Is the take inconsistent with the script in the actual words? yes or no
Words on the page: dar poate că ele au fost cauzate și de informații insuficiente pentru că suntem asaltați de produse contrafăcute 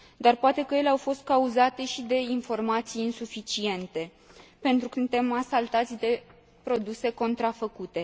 no